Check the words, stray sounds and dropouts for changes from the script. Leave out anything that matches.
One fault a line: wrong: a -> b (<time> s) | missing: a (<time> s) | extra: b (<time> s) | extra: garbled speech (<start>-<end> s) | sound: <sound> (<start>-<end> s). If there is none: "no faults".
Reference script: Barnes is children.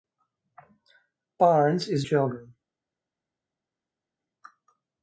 no faults